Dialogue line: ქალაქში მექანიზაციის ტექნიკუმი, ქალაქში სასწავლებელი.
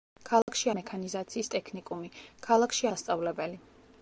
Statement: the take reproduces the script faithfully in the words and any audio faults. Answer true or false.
false